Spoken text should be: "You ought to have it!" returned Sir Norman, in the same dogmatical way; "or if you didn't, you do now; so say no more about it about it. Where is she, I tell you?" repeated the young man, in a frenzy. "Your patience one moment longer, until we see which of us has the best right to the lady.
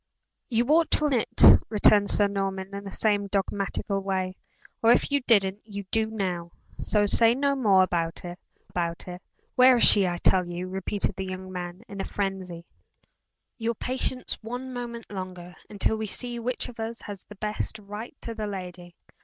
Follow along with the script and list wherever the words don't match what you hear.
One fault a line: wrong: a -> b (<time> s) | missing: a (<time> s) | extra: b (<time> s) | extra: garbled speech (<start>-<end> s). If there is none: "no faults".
no faults